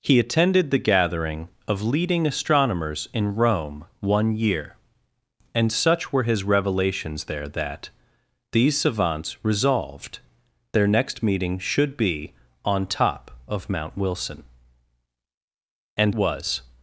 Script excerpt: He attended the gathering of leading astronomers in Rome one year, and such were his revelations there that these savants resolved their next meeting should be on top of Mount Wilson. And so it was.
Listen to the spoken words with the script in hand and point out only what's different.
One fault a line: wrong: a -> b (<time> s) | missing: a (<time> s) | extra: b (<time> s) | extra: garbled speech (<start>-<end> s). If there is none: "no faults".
missing: so it (16.1 s)